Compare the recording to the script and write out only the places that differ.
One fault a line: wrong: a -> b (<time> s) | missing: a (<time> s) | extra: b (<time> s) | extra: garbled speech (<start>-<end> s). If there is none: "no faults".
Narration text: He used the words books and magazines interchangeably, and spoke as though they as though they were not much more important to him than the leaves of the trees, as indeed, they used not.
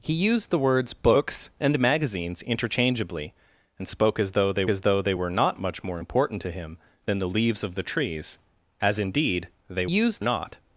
no faults